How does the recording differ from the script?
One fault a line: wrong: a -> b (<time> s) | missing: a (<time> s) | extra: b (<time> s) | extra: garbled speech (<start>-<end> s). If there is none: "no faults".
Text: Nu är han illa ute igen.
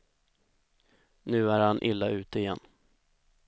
no faults